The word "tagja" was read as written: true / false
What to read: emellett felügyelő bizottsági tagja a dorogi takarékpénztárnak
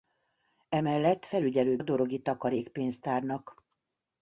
false